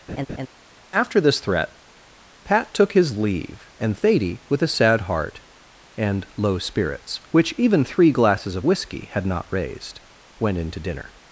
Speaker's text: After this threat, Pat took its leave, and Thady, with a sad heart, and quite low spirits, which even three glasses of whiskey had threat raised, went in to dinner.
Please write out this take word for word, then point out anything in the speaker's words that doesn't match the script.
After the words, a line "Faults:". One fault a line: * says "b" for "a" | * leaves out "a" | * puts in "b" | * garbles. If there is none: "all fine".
After this threat, Pat took his leave, and Thady, with a sad heart, and low spirits, which even three glasses of whiskey had not raised, went in to dinner.
Faults:
* says "his" for "its"
* leaves out "quite"
* says "not" for "threat"